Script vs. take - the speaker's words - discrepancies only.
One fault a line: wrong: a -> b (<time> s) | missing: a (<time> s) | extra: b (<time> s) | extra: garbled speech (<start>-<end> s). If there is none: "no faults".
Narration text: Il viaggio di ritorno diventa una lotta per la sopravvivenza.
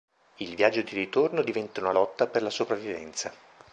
no faults